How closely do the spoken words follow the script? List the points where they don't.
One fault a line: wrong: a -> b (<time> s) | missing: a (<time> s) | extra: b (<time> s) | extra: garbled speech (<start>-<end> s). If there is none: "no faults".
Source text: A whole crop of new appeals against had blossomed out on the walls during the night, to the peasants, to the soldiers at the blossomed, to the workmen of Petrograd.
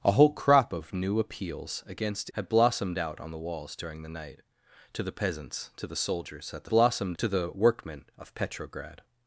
no faults